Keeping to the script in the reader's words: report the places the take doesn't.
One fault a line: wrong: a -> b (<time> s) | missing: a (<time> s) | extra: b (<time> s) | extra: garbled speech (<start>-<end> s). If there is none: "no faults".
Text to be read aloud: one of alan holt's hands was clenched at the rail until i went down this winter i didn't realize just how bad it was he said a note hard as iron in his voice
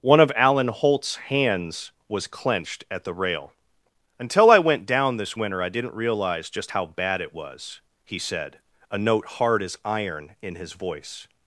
no faults